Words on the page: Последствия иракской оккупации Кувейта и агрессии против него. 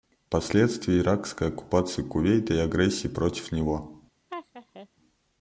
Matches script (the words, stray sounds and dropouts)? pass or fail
fail